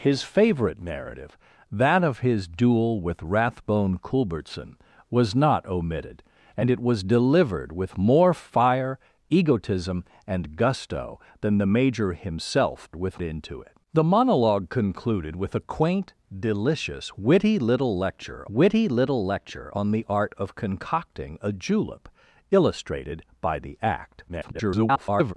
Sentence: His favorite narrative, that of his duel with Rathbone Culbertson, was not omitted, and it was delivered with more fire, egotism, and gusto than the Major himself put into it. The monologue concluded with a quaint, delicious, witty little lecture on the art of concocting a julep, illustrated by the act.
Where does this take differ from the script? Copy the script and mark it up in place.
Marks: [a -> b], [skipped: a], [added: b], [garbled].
His favorite narrative, that of his duel with Rathbone Culbertson, was not omitted, and it was delivered with more fire, egotism, and gusto than the Major himself [put -> with] into it. The monologue concluded with a quaint, delicious, witty little lecture [added: witty little lecture] on the art of concocting a julep, illustrated by the act. [garbled]